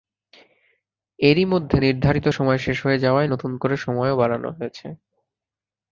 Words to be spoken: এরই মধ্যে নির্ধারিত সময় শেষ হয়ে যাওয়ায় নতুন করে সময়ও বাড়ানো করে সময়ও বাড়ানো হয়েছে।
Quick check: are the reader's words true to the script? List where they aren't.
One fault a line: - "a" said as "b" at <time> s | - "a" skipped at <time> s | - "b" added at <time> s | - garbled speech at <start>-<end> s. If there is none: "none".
- "করে সময়ও বাড়ানো" skipped at 4.5 s